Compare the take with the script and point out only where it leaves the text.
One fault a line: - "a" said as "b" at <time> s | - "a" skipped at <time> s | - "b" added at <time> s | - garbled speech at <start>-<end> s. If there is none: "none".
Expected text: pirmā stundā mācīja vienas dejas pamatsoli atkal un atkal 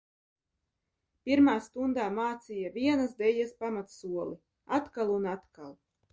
none